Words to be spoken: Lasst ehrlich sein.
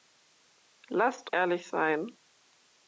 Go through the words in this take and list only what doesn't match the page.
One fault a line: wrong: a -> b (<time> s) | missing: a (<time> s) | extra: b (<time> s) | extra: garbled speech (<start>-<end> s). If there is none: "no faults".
no faults